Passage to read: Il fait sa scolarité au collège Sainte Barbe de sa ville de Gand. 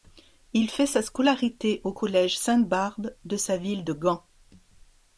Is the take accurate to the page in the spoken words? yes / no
yes